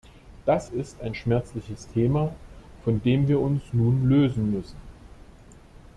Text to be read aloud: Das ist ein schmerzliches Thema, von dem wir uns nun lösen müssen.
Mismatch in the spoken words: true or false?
false